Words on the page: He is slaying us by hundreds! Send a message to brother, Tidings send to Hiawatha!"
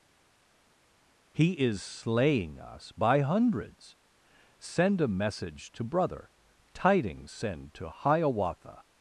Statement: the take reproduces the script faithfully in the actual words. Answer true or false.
true